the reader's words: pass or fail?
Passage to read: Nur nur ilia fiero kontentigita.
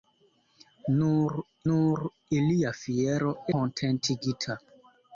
pass